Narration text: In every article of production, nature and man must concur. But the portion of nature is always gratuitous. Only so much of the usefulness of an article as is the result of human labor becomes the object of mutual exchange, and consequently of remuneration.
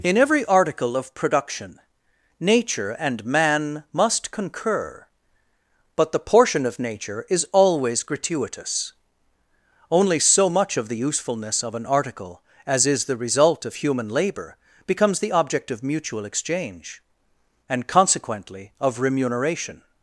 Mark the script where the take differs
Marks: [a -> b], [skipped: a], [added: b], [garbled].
In every article of production, nature and man must concur. But the portion of nature is always gratuitous. Only so much of the usefulness of an article as is the result of human labor becomes the object of mutual exchange, and consequently of remuneration.